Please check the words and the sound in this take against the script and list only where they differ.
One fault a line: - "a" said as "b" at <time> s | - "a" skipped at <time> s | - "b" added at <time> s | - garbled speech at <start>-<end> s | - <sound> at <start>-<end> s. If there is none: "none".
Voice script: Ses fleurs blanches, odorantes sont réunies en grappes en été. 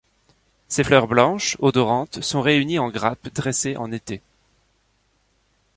- "dressées" added at 3.3 s